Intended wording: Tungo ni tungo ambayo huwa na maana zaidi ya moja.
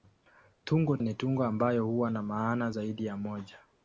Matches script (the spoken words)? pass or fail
pass